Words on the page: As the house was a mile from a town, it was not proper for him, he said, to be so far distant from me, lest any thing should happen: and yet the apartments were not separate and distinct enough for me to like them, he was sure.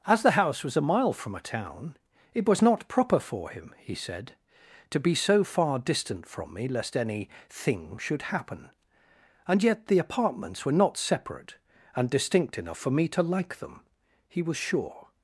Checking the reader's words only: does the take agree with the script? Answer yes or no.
yes